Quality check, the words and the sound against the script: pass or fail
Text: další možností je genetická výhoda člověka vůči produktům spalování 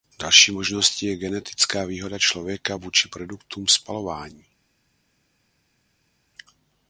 pass